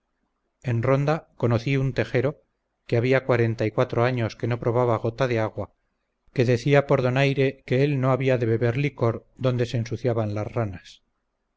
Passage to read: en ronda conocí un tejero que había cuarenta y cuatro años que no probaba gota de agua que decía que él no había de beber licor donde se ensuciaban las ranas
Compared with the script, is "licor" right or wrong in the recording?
right